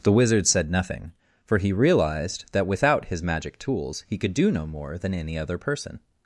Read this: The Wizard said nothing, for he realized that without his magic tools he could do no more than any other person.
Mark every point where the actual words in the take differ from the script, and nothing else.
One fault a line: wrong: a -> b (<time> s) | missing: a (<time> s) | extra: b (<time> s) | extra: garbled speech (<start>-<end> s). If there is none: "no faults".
no faults